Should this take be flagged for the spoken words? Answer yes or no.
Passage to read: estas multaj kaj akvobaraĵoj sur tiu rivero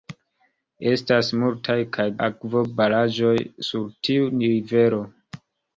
no